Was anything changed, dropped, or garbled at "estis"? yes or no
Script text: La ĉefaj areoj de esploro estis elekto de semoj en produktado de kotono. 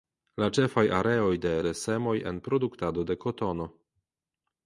yes